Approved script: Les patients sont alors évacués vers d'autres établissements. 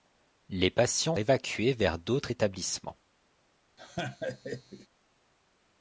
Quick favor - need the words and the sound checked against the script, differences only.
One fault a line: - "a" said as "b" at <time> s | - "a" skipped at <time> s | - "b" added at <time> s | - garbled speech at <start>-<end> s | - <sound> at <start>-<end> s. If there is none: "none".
- "sont alors" skipped at 1.1 s
- laugh at 3.8-4.9 s